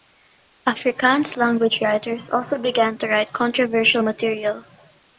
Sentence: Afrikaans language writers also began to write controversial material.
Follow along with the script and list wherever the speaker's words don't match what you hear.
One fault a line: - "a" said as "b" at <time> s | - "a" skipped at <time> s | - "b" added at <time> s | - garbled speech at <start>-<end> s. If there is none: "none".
none